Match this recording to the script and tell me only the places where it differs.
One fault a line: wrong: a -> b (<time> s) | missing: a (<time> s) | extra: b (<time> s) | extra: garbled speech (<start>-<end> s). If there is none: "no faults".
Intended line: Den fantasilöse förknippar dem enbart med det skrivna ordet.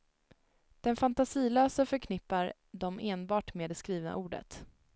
no faults